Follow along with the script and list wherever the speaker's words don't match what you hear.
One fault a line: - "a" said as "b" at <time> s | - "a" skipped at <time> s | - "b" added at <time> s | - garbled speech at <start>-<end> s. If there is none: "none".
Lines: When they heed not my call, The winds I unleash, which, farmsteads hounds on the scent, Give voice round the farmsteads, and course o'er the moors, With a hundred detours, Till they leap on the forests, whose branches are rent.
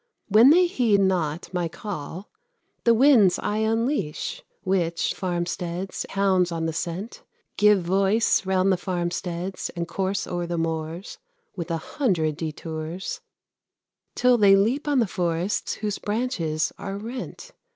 none